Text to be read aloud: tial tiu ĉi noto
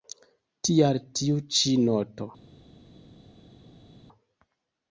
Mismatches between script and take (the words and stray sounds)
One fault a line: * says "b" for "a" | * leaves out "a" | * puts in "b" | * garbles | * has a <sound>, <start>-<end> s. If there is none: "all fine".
all fine